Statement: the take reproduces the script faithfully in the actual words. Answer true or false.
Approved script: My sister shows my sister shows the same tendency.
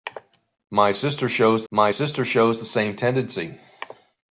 true